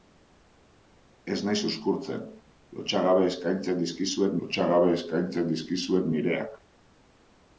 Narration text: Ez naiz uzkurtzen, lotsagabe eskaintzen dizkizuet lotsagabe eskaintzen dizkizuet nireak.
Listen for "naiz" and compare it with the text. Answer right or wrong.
right